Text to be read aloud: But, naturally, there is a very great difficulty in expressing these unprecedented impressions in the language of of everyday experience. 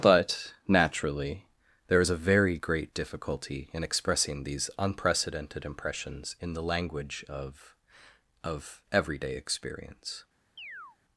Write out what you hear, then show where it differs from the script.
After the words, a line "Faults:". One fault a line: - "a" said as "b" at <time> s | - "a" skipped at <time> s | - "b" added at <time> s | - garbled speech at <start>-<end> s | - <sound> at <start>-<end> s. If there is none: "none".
But, naturally, there is a very great difficulty in expressing these unprecedented impressions in the language of of everyday experience.
Faults:
- chirp at 10.6-11.0 s